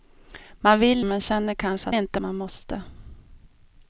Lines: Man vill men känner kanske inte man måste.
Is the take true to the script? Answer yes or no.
yes